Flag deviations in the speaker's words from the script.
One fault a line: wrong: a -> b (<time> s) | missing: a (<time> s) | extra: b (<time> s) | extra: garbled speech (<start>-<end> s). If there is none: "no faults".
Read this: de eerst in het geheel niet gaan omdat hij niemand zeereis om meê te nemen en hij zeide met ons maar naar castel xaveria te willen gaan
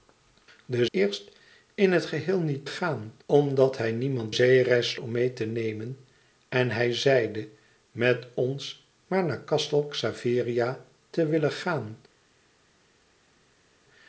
no faults